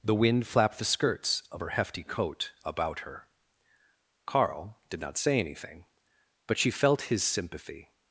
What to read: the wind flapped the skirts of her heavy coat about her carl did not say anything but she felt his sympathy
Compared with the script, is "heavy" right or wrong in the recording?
wrong